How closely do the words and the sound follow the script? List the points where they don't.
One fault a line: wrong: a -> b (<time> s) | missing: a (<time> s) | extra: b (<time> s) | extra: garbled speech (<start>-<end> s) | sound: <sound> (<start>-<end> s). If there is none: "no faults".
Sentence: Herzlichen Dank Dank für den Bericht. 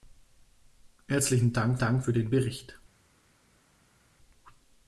no faults